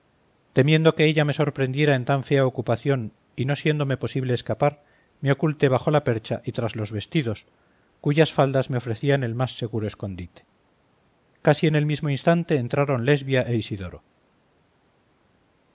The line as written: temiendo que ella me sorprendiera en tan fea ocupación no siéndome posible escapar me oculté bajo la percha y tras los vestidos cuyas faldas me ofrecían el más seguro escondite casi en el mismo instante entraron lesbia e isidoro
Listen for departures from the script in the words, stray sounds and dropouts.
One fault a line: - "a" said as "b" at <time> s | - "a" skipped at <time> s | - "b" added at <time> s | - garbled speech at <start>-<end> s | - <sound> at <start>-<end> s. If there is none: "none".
- "y" added at 3.4 s